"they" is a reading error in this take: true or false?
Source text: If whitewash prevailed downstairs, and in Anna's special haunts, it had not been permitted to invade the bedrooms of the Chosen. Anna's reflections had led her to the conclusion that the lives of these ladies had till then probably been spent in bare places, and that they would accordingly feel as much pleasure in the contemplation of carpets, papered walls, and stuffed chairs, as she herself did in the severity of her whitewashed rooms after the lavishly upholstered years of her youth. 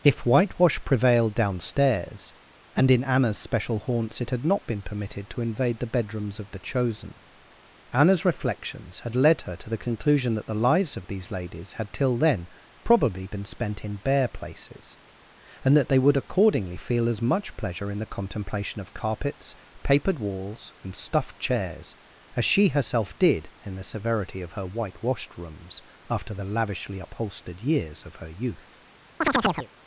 false